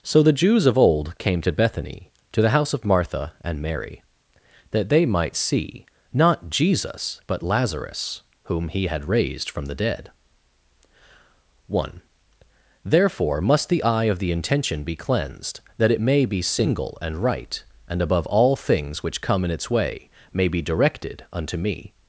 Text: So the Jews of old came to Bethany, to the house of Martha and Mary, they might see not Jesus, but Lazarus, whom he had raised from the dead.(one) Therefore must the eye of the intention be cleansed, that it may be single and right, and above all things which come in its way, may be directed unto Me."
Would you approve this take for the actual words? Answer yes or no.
no